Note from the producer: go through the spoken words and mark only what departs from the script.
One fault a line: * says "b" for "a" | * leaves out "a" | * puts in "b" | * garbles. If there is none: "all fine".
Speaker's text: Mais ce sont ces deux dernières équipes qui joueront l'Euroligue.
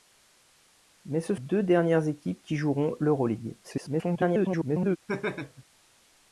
* leaves out "sont ces"
* garbles